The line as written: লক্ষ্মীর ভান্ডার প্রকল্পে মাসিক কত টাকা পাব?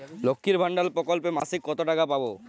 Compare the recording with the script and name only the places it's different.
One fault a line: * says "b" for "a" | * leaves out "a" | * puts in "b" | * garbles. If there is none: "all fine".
all fine